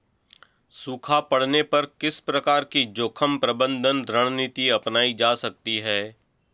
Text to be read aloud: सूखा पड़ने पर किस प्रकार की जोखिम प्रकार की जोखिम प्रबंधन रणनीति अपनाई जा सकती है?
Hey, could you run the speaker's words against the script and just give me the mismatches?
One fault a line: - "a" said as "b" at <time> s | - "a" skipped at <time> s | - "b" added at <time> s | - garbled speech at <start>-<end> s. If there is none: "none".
- "प्रकार की जोखिम" skipped at 3.4 s